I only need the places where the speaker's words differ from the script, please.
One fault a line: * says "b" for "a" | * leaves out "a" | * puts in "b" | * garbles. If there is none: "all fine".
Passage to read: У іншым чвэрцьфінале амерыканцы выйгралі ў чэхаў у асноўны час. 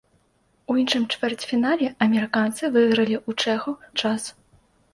* leaves out "у асноўны"